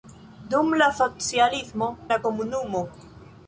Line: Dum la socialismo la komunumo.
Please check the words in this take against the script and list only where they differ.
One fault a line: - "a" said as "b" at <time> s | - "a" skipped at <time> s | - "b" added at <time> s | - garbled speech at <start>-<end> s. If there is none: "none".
none